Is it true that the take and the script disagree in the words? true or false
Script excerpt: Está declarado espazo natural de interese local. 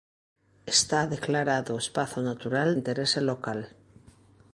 true